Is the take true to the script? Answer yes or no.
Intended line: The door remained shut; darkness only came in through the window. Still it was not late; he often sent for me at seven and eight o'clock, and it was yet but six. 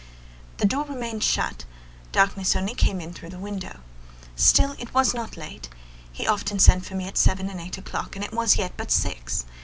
yes